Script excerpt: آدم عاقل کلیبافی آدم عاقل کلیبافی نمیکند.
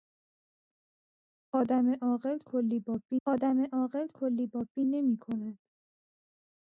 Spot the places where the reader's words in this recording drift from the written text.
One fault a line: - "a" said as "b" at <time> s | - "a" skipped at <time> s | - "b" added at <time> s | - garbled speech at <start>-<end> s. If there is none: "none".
none